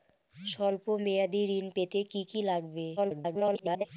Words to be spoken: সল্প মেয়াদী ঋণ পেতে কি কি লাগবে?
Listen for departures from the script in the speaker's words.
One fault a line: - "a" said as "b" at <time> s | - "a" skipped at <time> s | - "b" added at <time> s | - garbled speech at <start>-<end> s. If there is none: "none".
- garbled speech at 3.0-3.9 s